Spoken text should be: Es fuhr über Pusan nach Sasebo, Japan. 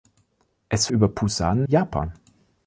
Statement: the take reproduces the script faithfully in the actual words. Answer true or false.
false